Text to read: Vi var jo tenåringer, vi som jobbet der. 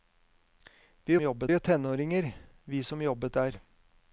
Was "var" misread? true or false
true